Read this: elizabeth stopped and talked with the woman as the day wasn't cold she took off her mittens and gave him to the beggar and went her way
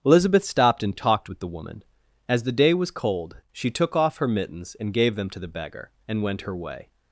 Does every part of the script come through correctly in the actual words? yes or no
no